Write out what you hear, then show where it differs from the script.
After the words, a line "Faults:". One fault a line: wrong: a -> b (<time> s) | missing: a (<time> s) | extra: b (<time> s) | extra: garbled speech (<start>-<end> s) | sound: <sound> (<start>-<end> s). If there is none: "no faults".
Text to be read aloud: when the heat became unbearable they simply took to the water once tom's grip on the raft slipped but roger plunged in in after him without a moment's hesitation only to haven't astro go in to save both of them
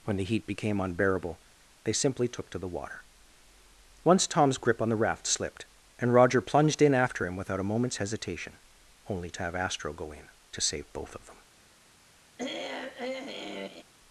when the heat became unbearable they simply took to the water once tom's grip on the raft slipped and roger plunged in after him without a moment's hesitation only to have astro go in to save both of them
Faults:
wrong: but -> and (6.0 s)
missing: in (6.9 s)
wrong: haven't -> have (9.4 s)
sound: throat clearing (12.4-13.8 s)